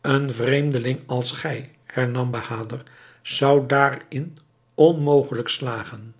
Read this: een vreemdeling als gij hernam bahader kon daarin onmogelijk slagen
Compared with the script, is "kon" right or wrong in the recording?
wrong